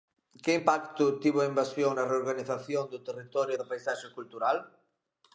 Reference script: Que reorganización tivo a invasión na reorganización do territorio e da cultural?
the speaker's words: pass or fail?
fail